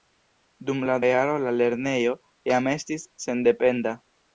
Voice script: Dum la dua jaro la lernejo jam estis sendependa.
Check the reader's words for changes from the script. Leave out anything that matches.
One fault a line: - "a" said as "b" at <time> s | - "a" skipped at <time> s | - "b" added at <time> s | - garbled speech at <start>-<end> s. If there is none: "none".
- "dua" skipped at 0.9 s